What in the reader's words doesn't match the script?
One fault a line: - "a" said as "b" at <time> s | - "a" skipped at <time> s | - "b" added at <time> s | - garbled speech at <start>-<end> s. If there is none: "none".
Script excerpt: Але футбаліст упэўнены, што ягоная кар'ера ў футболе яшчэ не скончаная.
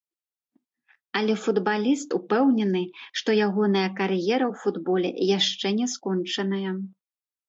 none